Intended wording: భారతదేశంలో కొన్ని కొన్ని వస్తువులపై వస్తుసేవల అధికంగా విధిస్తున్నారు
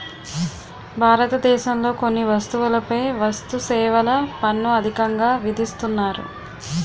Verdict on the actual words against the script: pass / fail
fail